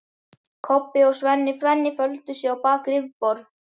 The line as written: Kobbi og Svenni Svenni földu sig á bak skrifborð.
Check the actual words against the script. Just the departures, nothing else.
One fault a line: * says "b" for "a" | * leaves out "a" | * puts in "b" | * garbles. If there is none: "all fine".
all fine